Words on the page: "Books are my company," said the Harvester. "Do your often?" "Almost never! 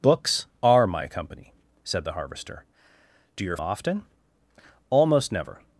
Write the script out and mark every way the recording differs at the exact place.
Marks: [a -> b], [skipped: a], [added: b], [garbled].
"Books are my company," said the Harvester. "Do your often?" "Almost never!